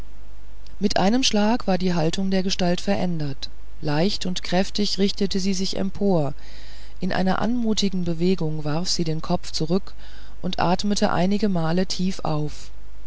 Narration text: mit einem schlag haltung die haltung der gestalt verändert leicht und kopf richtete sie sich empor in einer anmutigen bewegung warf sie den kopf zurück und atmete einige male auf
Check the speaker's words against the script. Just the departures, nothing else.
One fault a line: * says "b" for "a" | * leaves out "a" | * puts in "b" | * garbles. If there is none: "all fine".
* says "war" for "haltung"
* says "kräftig" for "kopf"
* puts in "tief"